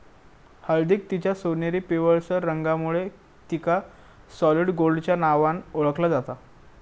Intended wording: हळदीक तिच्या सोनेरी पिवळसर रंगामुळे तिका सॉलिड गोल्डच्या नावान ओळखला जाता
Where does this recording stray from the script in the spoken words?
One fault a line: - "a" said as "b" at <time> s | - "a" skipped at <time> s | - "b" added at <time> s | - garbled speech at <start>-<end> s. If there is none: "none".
none